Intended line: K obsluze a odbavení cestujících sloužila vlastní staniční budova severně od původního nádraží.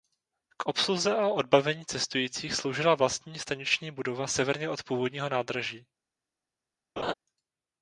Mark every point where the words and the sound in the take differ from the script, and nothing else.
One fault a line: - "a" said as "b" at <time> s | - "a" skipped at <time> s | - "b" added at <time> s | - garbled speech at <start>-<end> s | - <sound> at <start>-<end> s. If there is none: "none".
- laugh at 7.0-7.1 s